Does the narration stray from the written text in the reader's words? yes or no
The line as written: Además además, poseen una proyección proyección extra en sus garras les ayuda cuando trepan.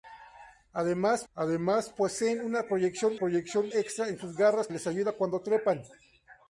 no